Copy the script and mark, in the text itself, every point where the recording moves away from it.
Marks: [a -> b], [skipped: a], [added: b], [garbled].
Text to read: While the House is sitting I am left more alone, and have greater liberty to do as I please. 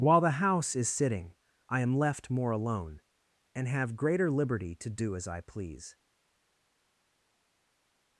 While the House is sitting I am left more alone, and have greater liberty to do as I please.